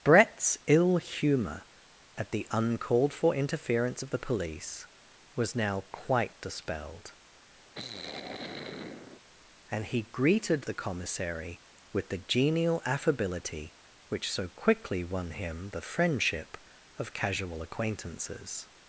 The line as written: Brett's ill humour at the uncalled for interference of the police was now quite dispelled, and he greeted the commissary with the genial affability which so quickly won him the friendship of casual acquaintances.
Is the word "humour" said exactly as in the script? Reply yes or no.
yes